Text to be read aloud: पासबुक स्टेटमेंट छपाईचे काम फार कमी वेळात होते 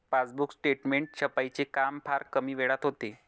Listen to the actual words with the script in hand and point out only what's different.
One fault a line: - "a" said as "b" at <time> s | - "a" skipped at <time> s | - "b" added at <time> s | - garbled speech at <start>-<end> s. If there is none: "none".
none